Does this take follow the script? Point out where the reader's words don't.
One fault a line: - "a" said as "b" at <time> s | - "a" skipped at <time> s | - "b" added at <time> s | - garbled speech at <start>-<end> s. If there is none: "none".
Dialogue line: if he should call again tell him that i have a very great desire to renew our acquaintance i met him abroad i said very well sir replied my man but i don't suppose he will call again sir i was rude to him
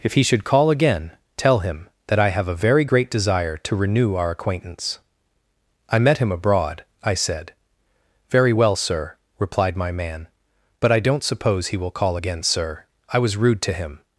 none